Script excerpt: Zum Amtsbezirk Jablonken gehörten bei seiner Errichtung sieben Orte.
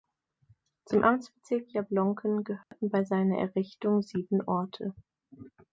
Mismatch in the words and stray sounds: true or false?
true